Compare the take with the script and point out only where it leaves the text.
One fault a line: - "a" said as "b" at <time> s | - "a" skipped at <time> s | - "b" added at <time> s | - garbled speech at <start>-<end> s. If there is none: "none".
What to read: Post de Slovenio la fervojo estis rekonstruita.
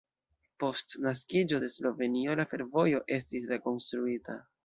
- "naskiĝo" added at 1.1 s